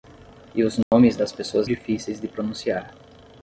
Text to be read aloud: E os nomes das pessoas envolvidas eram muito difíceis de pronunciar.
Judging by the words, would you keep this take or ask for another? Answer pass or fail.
fail